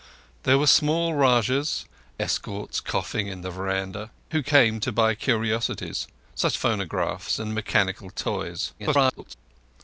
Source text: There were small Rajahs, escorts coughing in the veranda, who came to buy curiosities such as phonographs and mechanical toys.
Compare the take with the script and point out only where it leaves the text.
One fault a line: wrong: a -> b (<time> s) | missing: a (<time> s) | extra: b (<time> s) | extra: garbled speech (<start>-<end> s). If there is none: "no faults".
missing: as (6.6 s)
extra: garbled speech (8.8-9.3 s)